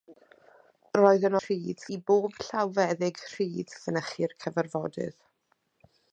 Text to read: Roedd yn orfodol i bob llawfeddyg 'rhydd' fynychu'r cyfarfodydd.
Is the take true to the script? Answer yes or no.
no